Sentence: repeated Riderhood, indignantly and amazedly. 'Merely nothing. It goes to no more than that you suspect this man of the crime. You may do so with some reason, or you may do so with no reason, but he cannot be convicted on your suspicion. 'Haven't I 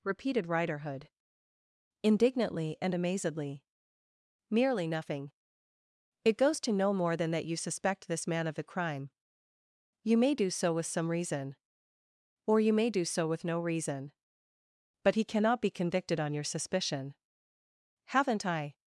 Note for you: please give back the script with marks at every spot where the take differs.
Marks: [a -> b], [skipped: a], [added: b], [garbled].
repeated Riderhood, indignantly and amazedly. 'Merely nothing. It goes to no more than that you suspect this man of the crime. You may do so with some reason, or you may do so with no reason, but he cannot be convicted on your suspicion. 'Haven't I